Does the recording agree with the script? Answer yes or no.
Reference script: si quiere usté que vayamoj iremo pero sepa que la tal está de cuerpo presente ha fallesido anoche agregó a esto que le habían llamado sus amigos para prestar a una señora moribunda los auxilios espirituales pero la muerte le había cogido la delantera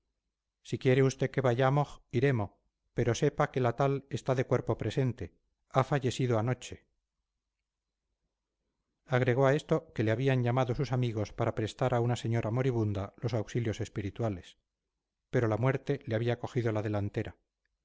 yes